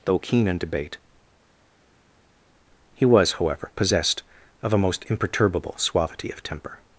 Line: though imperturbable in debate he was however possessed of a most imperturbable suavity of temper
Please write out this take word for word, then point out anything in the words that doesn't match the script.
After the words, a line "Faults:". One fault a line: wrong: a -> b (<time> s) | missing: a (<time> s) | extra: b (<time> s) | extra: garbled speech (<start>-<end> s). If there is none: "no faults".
though keen in debate he was however possessed of a most imperturbable suavity of temper
Faults:
wrong: imperturbable -> keen (0.2 s)